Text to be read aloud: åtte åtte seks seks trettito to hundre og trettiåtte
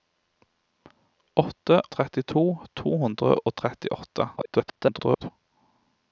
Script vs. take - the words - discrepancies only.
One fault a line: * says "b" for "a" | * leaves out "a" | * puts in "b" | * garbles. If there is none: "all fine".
* leaves out "åtte seks seks"
* garbles